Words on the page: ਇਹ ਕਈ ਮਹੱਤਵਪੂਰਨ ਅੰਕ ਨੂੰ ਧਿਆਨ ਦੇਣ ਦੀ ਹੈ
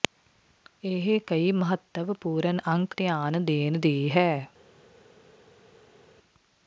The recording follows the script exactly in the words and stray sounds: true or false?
false